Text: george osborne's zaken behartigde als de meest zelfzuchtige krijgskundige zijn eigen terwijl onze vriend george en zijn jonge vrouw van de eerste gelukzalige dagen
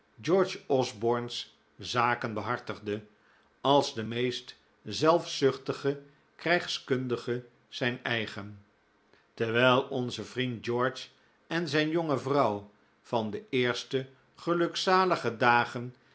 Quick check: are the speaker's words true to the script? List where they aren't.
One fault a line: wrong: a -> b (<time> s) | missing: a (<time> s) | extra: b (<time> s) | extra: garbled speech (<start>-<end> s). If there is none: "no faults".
no faults